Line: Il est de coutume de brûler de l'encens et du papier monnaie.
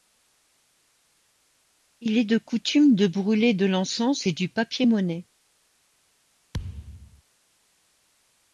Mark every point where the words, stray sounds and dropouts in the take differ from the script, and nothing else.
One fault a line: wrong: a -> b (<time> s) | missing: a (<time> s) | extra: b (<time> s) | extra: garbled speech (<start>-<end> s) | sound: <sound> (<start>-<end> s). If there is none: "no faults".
sound: thud (6.5-7.2 s)